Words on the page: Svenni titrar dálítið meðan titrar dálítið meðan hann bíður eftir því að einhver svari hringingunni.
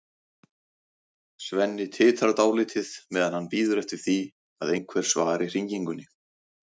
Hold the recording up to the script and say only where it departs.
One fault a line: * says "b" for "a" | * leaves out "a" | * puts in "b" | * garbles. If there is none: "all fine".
* leaves out "titrar dálítið meðan"